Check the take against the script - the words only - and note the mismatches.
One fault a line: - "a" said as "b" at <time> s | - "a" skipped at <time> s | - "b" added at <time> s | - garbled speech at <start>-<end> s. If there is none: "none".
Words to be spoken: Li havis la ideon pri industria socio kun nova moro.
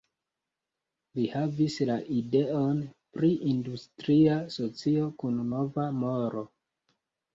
none